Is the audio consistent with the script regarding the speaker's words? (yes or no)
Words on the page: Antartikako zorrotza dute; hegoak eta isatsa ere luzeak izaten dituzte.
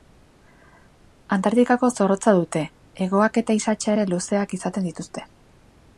yes